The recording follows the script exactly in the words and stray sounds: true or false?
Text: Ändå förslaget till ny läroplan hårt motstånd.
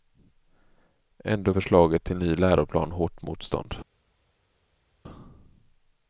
true